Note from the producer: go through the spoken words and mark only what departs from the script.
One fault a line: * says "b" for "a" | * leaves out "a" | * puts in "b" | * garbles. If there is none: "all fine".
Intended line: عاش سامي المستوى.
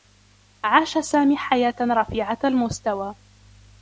* puts in "حياة رفيعة"